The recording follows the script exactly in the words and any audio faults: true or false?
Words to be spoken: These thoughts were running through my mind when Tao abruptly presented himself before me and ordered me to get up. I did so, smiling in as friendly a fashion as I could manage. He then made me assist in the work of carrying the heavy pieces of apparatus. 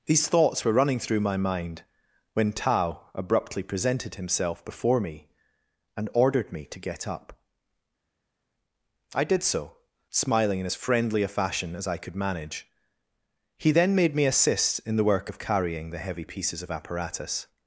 true